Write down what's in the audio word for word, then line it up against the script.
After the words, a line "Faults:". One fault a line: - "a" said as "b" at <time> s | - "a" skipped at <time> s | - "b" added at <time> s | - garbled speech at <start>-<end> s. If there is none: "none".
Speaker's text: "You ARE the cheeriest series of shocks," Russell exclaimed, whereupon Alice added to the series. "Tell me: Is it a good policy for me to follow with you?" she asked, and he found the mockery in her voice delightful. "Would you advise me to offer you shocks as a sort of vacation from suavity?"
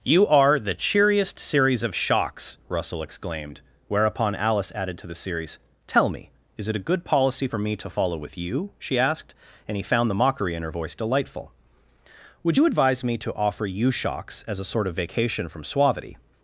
"You ARE the cheeriest series of shocks," Russell exclaimed, whereupon Alice added to the series. "Tell me: Is it a good policy for me to follow with you?" she asked, and he found the mockery in her voice delightful. "Would you advise me to offer you shocks as a sort of vacation from suavity?"
Faults:
none